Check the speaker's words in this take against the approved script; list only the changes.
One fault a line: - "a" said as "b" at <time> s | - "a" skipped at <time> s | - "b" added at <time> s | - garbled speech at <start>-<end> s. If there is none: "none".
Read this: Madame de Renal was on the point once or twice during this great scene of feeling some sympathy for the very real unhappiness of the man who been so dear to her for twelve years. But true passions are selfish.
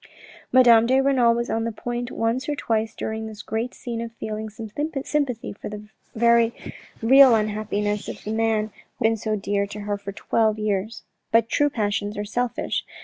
none